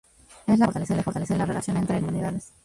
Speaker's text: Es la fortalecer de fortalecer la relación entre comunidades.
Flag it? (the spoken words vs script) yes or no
no